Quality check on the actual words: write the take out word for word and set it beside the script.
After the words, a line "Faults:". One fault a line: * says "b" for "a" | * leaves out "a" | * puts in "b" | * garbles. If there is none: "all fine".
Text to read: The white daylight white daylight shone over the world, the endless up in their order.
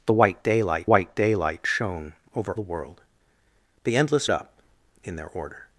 The white daylight white daylight shone over the world, the endless up in their order.
Faults:
all fine